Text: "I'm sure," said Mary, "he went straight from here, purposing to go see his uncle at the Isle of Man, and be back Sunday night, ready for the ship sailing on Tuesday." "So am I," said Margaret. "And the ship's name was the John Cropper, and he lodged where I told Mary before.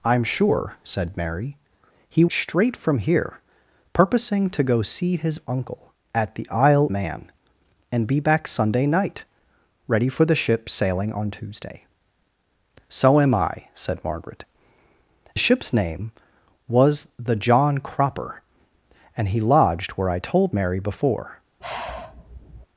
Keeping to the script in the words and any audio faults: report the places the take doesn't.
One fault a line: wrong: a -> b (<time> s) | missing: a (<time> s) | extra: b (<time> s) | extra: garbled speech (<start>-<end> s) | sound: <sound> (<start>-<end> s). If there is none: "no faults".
missing: went (2.2 s)
missing: of (6.9 s)
missing: And (14.4 s)
sound: sigh (21.6-22.7 s)